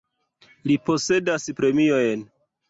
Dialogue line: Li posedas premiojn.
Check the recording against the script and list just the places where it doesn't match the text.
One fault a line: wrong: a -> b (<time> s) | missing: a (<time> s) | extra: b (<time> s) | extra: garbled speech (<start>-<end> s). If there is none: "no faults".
no faults